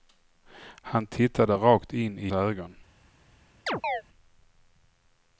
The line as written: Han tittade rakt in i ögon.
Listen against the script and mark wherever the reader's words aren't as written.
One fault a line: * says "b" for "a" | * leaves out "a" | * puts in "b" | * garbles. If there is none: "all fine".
all fine